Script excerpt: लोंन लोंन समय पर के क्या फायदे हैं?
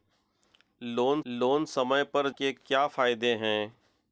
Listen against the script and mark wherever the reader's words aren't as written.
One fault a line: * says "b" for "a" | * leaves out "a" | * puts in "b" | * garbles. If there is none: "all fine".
all fine